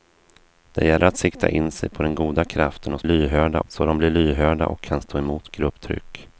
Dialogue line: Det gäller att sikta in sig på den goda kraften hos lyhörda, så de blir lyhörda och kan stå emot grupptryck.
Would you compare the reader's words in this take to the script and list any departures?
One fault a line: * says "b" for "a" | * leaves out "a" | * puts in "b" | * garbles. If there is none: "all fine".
all fine